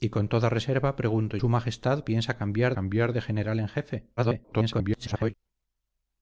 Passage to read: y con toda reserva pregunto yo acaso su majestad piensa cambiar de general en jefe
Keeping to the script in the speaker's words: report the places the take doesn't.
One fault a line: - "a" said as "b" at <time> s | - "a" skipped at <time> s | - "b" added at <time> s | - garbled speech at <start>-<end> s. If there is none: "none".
- "yo acaso" skipped at 1.4 s
- "cambiar" added at 2.7 s
- garbled speech at 4.2-5.3 s